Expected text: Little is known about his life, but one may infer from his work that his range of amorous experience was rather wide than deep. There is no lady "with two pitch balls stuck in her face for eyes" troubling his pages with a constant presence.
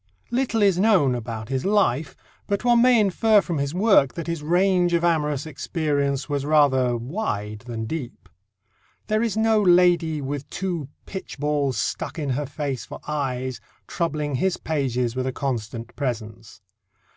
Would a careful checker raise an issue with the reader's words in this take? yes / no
no